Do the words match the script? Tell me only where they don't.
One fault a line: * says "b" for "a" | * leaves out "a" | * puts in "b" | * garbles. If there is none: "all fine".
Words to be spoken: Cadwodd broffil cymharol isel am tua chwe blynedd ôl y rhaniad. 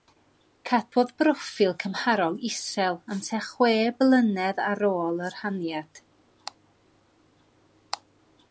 * puts in "ar"